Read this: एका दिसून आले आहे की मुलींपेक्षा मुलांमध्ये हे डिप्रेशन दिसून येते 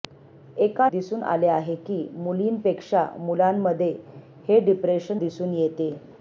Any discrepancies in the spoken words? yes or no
no